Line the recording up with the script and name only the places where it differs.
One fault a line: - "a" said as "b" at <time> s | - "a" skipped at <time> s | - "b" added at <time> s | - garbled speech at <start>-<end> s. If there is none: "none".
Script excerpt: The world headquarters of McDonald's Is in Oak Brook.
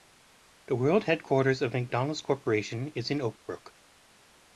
- "Corporation" added at 2.2 s